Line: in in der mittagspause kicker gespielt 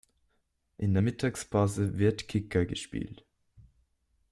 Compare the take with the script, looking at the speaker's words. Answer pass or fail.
fail